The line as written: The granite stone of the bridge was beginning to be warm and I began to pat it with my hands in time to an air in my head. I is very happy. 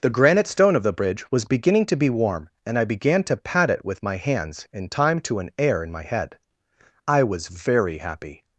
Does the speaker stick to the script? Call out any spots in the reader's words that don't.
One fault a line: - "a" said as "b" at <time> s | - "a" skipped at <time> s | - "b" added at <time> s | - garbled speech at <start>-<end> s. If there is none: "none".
- "is" said as "was" at 7.2 s